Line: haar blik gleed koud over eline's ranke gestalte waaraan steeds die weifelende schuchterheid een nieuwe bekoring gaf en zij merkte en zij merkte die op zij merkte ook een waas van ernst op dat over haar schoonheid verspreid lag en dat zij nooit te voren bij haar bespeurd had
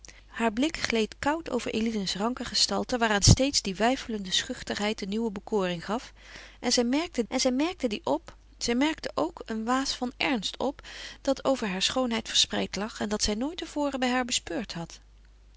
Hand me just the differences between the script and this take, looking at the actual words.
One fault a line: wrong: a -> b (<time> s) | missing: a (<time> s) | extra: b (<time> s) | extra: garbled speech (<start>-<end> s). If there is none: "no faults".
no faults